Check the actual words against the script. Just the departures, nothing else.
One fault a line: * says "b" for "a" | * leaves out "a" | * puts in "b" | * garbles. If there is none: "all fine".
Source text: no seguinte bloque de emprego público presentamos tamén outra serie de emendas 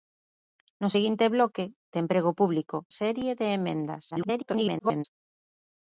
* leaves out "presentamos tamén outra"
* garbles